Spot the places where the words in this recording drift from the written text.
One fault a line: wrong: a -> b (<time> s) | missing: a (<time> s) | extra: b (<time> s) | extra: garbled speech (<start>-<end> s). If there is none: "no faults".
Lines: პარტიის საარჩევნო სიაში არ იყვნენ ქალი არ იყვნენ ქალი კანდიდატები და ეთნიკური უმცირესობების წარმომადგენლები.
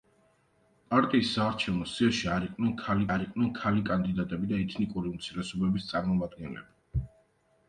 no faults